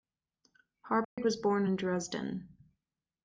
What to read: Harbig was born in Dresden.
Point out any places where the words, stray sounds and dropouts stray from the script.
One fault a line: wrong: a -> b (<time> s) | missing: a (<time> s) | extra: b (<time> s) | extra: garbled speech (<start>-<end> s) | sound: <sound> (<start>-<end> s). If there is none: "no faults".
sound: dropout (1.0-1.2 s)